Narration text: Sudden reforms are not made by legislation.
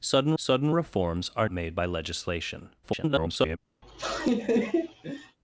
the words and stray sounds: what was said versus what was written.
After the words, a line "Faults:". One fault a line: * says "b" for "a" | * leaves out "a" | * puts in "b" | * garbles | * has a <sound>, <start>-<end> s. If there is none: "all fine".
Sudden sudden reforms are made by legislation. [garbled]
Faults:
* puts in "sudden"
* leaves out "not"
* garbles
* has a laugh, 3.8-5.4 s